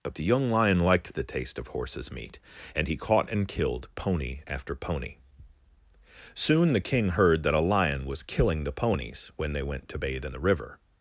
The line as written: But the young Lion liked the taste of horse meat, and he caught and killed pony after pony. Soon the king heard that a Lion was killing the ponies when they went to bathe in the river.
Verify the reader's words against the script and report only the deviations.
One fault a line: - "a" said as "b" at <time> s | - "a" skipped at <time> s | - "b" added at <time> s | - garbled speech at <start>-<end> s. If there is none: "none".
- "horse" said as "horses" at 1.7 s